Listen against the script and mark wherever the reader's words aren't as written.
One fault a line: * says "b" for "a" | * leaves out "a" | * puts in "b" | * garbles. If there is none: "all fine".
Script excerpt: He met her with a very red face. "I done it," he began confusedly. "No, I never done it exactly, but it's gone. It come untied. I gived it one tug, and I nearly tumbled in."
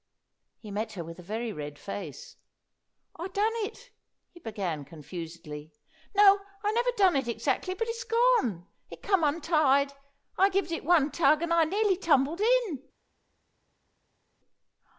all fine